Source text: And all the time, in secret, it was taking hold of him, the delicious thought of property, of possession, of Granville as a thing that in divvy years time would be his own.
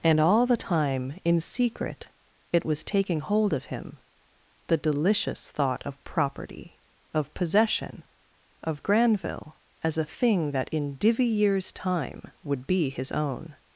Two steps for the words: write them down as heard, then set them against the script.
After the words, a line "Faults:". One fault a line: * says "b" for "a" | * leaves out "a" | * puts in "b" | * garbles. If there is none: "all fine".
And all the time, in secret, it was taking hold of him, the delicious thought of property, of possession, of Granville as a thing that in divvy years time would be his own.
Faults:
all fine